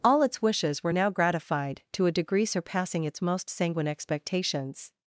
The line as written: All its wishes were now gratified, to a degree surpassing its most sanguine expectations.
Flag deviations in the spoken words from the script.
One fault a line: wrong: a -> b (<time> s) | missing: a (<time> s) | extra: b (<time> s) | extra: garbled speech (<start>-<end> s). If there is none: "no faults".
no faults